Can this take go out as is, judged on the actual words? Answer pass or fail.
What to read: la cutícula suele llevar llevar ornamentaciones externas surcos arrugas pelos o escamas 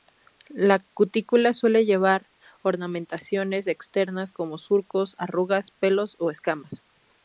fail